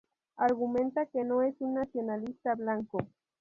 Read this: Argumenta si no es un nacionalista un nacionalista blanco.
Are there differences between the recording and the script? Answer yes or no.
yes